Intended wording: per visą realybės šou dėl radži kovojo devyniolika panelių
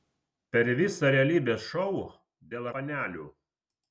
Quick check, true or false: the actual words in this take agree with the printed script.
false